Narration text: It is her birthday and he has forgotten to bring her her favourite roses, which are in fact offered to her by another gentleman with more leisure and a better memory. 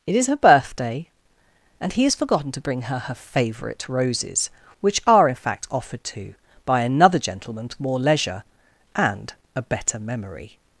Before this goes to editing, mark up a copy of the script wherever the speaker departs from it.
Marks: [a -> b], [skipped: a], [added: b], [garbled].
It is her birthday and he has forgotten to bring her her favourite roses, which are in fact offered to [skipped: her] by another gentleman with more leisure and a better memory.